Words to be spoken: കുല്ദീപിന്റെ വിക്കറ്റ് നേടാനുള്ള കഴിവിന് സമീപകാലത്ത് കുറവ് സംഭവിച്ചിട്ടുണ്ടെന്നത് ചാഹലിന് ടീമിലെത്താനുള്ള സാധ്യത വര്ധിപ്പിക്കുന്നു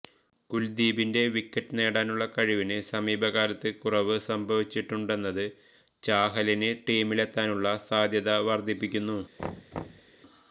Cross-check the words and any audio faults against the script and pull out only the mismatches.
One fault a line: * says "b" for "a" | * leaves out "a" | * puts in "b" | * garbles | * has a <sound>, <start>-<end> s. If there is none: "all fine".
* has a thud, 9.4-10.1 s